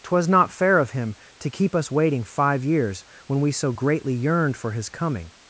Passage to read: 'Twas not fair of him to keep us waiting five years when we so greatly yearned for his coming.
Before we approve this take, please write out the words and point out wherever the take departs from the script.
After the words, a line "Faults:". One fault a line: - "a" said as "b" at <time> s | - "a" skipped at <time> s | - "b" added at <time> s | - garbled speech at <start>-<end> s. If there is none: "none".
'Twas not fair of him to keep us waiting five years when we so greatly yearned for his coming.
Faults:
none